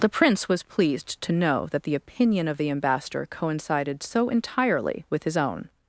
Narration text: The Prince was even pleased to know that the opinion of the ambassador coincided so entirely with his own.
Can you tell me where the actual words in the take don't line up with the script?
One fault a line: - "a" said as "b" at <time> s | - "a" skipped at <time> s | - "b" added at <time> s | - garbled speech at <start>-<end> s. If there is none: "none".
- "even" skipped at 0.6 s